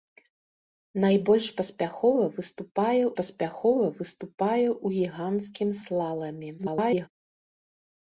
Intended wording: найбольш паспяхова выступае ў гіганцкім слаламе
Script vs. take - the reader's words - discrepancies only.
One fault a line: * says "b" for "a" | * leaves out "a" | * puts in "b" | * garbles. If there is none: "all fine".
* puts in "паспяхова выступае"
* garbles